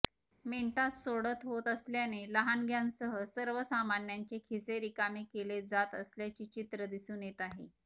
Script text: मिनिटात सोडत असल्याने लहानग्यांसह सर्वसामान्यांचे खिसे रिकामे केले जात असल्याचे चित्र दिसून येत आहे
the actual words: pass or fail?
fail